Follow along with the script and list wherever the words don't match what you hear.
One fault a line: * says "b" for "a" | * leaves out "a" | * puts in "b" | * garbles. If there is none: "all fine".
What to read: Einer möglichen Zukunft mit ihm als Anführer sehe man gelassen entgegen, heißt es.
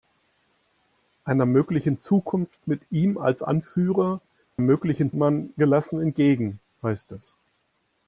* says "möglichen" for "sehe"